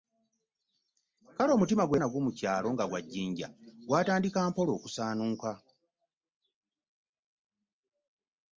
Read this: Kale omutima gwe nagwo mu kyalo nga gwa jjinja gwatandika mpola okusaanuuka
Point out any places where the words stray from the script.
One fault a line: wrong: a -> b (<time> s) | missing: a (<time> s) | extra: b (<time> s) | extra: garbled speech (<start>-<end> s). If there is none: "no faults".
no faults